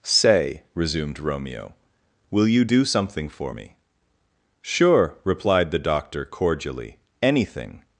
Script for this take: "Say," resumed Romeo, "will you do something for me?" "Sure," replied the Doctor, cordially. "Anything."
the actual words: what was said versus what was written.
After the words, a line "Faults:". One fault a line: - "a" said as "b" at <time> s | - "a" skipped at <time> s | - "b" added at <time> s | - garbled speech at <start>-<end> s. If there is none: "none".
"Say," resumed Romeo, "will you do something for me?" "Sure," replied the Doctor, cordially. "Anything."
Faults:
none